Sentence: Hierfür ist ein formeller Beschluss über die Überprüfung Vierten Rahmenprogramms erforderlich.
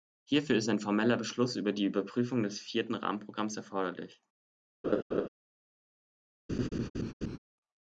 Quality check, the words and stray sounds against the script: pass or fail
fail